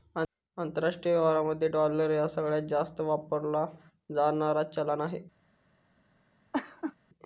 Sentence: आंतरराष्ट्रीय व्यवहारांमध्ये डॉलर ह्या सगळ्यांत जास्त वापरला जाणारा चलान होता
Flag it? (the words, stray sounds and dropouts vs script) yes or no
yes